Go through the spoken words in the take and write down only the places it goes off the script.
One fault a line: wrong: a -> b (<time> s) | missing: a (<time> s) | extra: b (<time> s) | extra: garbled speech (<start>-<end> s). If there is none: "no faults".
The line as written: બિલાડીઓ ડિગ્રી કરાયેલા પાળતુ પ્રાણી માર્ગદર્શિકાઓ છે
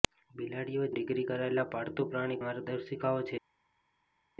no faults